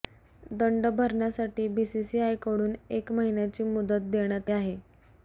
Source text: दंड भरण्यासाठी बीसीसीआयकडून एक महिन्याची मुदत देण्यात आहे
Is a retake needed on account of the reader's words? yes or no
no